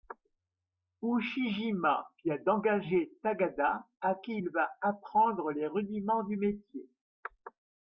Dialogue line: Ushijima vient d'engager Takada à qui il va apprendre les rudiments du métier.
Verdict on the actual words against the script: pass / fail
pass